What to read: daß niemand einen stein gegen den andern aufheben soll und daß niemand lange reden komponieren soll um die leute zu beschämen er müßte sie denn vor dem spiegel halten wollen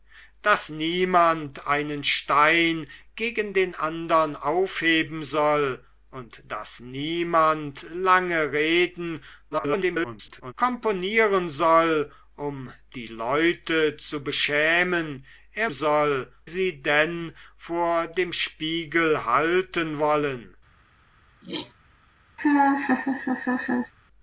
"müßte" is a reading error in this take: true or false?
true